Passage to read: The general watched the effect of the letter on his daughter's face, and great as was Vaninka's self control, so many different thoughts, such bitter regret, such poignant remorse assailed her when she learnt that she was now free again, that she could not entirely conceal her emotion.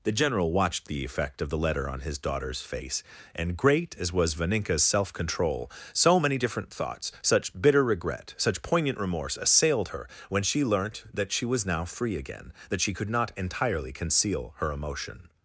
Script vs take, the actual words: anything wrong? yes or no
no